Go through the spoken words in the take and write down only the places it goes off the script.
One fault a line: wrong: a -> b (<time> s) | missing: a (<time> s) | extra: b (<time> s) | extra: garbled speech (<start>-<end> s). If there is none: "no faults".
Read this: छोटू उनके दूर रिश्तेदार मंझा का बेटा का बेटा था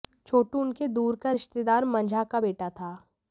extra: का (1.1 s)
missing: का बेटा (2.7 s)